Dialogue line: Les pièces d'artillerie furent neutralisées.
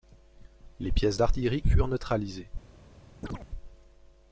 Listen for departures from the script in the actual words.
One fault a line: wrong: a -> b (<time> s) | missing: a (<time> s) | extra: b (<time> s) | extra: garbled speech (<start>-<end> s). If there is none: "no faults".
no faults